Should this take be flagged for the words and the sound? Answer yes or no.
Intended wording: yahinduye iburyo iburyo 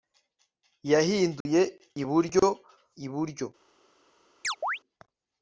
yes